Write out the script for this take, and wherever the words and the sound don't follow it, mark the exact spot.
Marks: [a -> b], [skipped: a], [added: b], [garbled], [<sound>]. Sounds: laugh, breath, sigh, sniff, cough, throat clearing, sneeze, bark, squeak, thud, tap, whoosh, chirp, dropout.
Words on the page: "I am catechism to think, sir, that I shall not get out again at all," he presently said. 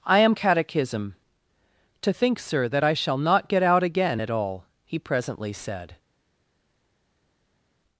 "I am catechism to think, sir, that I shall not get out again at all," he presently said.